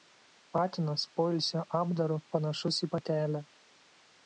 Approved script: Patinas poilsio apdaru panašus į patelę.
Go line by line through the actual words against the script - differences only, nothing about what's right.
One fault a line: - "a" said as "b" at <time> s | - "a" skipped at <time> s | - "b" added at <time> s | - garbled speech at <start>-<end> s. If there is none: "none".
none